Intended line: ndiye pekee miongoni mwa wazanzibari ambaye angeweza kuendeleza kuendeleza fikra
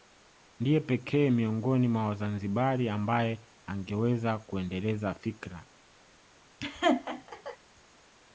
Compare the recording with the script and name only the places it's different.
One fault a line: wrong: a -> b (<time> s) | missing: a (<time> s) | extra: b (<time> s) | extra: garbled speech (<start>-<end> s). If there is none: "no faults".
missing: kuendeleza (5.1 s)